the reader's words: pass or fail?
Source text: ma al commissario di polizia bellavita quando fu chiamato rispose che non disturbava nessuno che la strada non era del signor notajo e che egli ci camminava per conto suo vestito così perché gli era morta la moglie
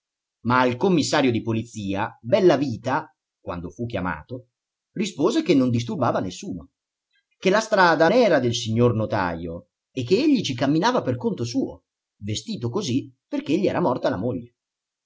fail